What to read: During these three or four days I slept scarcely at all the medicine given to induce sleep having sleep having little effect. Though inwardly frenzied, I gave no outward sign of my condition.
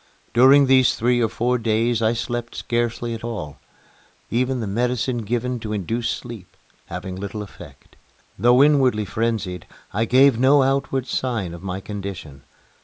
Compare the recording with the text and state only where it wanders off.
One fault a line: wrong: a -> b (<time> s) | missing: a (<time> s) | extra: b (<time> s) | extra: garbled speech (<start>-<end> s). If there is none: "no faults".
extra: even (4.3 s)
missing: sleep having (7.2 s)